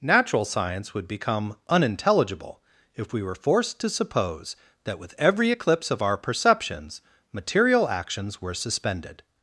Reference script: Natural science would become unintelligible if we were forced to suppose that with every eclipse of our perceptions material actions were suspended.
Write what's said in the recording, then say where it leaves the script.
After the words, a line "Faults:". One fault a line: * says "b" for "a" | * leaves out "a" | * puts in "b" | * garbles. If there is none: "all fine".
Natural science would become unintelligible if we were forced to suppose that with every eclipse of our perceptions material actions were suspended.
Faults:
all fine